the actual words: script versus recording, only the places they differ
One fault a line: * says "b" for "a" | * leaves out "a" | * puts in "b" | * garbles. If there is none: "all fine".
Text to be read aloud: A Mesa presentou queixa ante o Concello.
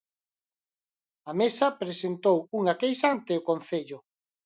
* puts in "unha"